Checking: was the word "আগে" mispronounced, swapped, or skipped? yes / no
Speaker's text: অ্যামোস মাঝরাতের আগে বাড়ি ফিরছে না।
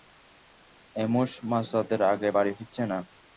no